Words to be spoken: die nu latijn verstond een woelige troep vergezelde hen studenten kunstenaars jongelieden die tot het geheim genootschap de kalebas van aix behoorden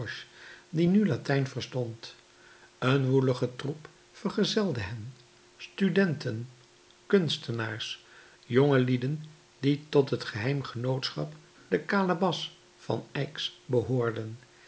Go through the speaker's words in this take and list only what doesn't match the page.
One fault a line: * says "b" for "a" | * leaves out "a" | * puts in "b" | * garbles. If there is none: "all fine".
all fine